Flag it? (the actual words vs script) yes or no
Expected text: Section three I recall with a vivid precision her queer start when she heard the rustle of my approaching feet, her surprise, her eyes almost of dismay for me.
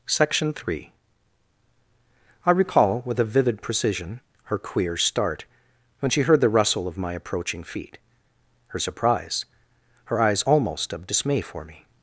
no